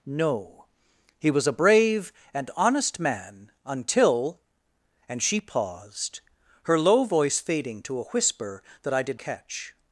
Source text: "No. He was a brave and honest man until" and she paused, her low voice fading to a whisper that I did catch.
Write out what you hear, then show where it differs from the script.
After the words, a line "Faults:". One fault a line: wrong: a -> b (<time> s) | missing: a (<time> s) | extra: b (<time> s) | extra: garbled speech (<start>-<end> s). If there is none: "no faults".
"No. He was a brave and honest man until" and she paused, her low voice fading to a whisper that I did catch.
Faults:
no faults